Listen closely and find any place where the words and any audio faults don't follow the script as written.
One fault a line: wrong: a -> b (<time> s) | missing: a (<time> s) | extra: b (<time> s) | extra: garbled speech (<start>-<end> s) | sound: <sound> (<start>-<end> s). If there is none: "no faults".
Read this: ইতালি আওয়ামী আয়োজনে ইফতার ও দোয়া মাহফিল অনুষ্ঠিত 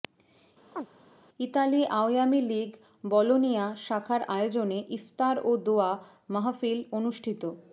sound: chirp (0.7-0.9 s)
extra: লীগ বলোনিয়া শাখার (2.4 s)